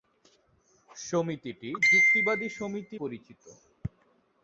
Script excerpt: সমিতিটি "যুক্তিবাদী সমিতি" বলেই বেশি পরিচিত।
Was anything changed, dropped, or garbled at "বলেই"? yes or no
yes